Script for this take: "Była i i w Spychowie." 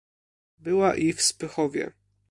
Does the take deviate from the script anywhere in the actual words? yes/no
yes